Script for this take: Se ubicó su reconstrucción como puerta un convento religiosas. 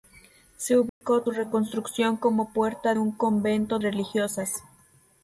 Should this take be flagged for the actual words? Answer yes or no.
no